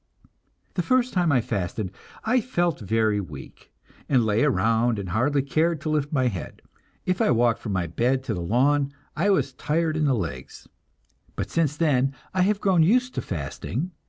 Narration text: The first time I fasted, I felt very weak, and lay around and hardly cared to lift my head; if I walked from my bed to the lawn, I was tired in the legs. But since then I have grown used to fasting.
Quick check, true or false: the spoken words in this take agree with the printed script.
true